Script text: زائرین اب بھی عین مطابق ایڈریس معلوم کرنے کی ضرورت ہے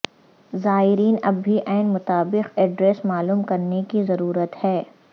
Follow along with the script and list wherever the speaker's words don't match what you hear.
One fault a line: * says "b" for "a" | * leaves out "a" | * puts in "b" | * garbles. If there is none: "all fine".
all fine